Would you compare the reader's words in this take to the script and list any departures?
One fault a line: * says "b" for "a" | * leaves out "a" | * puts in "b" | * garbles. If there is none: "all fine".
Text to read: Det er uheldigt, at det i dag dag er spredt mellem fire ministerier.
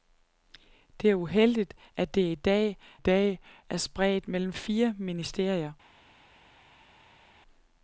all fine